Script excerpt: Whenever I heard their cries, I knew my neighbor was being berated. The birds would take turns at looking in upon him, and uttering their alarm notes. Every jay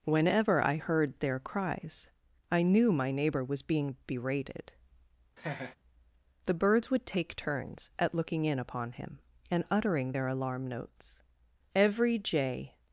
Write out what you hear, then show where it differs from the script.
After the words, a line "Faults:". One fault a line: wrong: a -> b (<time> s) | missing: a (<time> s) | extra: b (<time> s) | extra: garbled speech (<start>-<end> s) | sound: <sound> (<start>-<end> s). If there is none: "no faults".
Whenever I heard their cries, I knew my neighbor was being berated. The birds would take turns at looking in upon him, and uttering their alarm notes. Every jay
Faults:
sound: laugh (5.4-5.8 s)